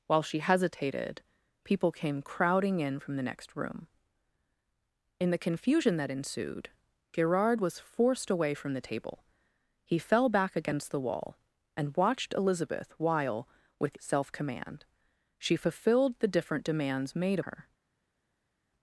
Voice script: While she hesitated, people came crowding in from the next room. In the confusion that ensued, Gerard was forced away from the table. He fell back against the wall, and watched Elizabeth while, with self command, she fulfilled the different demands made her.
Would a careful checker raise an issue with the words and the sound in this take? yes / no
no